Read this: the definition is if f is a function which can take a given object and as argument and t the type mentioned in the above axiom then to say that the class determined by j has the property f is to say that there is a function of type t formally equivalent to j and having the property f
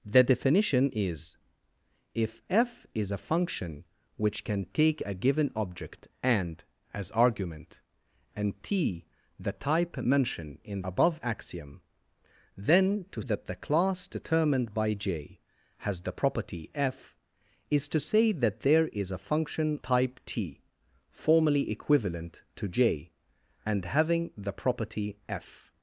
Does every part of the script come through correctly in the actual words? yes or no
no